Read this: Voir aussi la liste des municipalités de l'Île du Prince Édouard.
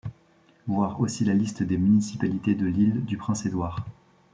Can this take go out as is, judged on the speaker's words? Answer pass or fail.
pass